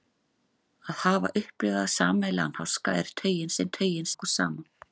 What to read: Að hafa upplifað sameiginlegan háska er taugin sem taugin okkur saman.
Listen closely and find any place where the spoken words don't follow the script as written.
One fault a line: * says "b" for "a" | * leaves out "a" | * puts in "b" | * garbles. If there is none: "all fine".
all fine